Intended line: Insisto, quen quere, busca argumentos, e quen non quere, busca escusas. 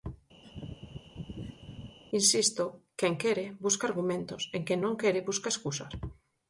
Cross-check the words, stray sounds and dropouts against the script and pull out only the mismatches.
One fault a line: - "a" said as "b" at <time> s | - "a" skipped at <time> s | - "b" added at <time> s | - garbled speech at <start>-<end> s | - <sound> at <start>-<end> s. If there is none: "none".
- laugh at 0.4-2.0 s